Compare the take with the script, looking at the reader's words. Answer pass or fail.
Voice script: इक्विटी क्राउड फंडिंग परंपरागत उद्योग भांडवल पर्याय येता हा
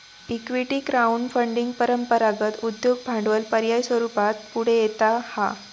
fail